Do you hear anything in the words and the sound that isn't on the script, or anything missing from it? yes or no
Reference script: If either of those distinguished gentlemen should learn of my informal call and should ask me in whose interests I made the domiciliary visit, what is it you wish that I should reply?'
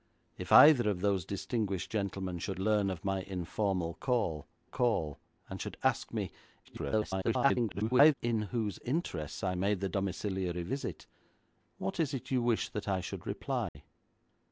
yes